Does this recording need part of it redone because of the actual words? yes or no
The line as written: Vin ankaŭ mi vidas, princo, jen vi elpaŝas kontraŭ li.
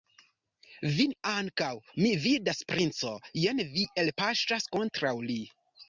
no